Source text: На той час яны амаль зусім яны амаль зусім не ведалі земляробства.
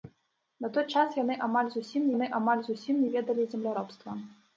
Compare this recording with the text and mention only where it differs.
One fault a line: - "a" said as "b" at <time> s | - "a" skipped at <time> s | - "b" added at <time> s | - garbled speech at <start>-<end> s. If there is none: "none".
none